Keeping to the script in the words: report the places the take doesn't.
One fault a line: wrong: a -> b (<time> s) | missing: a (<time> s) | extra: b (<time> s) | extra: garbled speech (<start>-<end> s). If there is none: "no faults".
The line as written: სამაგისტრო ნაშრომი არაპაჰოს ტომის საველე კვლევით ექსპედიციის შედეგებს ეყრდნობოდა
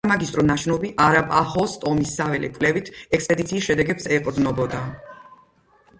no faults